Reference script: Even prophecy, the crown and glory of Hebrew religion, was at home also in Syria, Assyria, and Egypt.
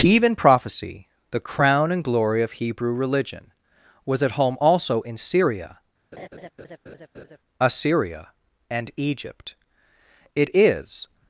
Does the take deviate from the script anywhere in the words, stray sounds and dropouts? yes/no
yes